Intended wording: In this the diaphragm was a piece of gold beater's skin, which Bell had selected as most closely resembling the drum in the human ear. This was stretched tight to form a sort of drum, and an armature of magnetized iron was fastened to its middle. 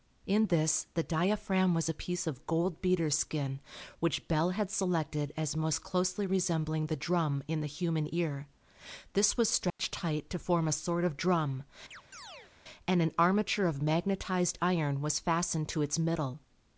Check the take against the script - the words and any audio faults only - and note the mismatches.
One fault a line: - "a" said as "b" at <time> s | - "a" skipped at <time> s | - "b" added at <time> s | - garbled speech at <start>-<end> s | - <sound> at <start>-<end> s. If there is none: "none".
- dropout at 9.7-9.8 s
- chirp at 11.9-12.5 s